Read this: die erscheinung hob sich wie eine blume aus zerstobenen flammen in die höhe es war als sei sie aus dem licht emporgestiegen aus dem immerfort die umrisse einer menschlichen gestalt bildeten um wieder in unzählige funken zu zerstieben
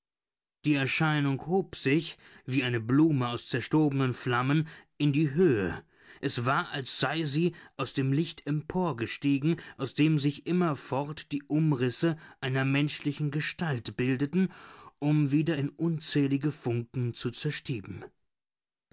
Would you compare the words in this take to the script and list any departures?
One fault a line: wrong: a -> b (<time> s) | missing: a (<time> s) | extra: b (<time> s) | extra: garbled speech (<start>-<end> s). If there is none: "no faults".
extra: sich (10.2 s)